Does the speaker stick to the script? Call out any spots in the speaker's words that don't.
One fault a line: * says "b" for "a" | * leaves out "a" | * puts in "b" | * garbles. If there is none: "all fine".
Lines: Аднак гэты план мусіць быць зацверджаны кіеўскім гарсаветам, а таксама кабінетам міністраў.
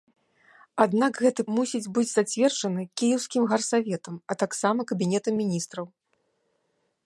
* leaves out "план"